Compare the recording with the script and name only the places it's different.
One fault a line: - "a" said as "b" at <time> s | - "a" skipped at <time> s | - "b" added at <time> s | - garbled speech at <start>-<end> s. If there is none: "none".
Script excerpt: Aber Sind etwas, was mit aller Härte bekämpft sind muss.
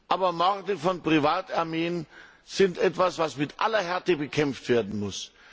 - "Morde von Privatarmeen" added at 0.3 s
- "sind" said as "werden" at 4.7 s